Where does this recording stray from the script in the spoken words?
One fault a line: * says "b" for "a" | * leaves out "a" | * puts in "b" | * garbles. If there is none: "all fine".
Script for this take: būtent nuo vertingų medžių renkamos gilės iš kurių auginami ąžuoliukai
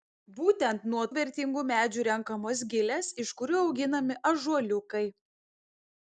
all fine